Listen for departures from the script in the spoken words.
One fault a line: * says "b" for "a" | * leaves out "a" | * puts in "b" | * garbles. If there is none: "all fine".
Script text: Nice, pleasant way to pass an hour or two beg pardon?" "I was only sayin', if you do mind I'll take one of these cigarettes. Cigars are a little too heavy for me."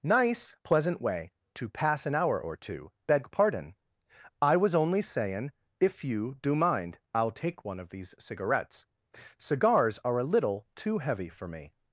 all fine